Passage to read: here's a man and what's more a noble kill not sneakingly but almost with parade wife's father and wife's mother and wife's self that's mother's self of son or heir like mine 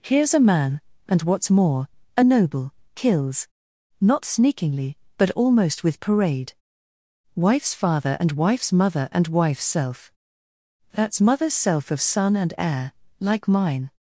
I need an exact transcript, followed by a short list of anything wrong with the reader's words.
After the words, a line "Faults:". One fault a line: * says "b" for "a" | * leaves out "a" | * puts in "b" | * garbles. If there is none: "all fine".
here's a man and what's more a noble kills not sneakingly but almost with parade wife's father and wife's mother and wife's self that's mother's self of son and heir like mine
Faults:
* says "kills" for "kill"
* says "and" for "or"